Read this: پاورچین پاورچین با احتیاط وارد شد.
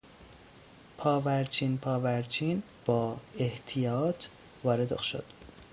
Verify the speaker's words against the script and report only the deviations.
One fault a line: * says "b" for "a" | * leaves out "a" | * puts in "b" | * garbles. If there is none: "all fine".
all fine